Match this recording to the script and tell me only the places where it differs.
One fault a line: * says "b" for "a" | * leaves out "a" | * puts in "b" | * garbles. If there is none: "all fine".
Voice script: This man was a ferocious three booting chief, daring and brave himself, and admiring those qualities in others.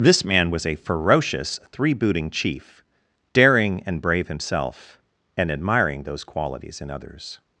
all fine